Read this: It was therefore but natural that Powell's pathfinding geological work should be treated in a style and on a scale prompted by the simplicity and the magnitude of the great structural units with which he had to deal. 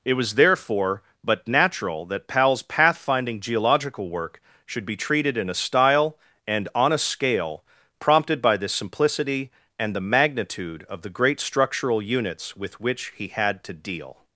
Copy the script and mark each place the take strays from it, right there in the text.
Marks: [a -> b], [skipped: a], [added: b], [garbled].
It was therefore but natural that Powell's pathfinding geological work should be treated in a style and on a scale prompted by the simplicity and the magnitude of the great structural units with which he had to deal.